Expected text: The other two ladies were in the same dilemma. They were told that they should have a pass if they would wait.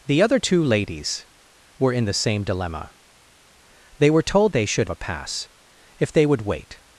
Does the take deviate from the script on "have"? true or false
true